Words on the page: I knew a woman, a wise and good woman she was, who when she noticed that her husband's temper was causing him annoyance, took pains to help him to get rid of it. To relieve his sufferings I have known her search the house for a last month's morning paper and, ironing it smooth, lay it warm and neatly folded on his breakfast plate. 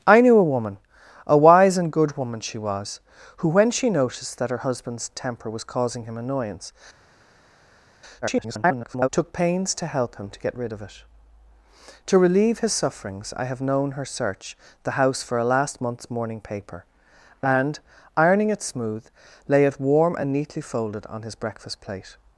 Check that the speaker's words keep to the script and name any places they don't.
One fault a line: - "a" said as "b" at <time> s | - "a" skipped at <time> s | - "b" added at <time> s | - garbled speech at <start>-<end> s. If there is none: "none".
- garbled speech at 8.2-9.1 s